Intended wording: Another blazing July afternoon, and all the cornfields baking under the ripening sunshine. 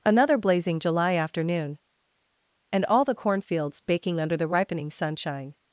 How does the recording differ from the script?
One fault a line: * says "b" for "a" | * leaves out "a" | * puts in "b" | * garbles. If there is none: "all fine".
all fine